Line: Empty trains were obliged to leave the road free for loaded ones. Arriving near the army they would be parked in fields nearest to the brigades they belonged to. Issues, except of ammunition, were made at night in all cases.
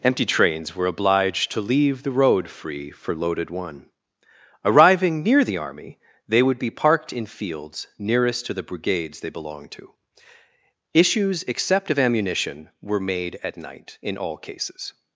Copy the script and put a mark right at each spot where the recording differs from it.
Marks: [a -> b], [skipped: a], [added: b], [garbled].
Empty trains were obliged to leave the road free for loaded [ones. -> one] Arriving near the army they would be parked in fields nearest to the brigades they belonged to. Issues, except of ammunition, were made at night in all cases.